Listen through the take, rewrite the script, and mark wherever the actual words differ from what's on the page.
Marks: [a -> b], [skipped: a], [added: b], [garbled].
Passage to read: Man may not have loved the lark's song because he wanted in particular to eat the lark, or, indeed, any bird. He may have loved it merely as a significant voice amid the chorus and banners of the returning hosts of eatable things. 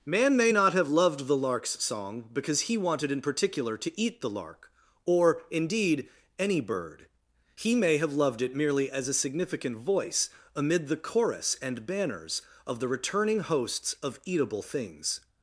Man may not have loved the lark's song because he wanted in particular to eat the lark, or, indeed, any bird. He may have loved it merely as a significant voice amid the chorus and banners of the returning hosts of eatable things.